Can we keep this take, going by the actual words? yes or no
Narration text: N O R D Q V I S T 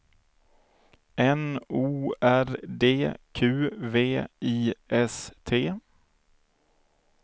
yes